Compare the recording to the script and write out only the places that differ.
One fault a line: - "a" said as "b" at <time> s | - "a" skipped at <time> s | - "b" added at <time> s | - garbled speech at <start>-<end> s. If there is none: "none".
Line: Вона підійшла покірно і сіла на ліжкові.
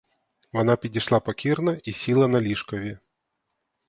none